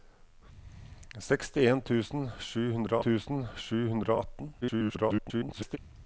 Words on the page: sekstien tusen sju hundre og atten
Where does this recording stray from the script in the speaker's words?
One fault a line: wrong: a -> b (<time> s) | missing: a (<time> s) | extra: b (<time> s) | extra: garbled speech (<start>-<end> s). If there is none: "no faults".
extra: tusen sju hundre (3.1 s)
extra: garbled speech (4.6-5.8 s)